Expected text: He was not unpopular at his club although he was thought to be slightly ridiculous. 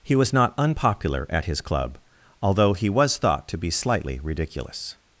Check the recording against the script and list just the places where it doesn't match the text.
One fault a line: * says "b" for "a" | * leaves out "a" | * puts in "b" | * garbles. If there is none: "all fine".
all fine